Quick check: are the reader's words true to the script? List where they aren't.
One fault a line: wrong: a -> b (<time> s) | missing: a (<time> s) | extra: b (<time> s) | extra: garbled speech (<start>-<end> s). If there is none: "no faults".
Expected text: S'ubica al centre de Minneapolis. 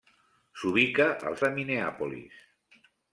missing: centre (1.4 s)